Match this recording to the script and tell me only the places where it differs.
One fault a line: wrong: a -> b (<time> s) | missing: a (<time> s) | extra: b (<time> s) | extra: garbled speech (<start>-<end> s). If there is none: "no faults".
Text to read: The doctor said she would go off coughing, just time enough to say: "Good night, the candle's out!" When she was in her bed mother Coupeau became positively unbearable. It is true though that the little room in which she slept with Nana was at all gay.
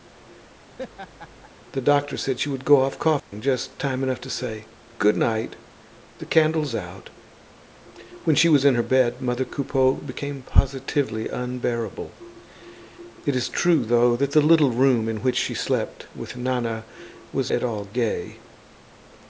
no faults